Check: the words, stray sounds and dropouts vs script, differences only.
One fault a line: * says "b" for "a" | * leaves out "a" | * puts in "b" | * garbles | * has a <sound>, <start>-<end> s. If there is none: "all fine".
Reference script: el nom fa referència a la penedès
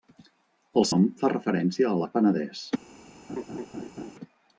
* has a laugh, 3.3-4.1 s